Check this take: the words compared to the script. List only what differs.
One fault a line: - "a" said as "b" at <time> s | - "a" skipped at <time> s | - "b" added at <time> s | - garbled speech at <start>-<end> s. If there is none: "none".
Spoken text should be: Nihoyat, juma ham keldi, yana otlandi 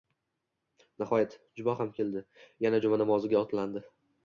- "juma namoziga" added at 2.9 s